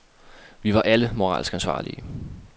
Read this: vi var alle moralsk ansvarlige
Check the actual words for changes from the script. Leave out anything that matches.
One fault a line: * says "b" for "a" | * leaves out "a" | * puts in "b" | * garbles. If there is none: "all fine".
all fine